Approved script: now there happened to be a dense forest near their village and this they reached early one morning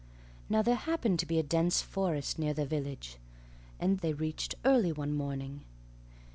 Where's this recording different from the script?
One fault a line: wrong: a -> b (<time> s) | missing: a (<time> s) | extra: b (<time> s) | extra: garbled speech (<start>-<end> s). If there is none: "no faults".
missing: this (4.0 s)